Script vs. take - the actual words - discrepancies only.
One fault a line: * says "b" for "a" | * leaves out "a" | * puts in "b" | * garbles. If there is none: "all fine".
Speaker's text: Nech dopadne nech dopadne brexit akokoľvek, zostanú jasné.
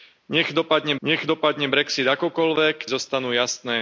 all fine